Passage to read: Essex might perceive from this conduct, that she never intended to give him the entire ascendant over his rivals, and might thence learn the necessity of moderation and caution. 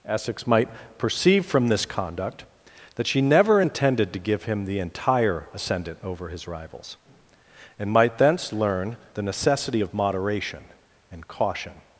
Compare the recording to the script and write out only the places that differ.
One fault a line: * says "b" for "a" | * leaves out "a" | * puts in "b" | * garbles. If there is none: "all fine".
all fine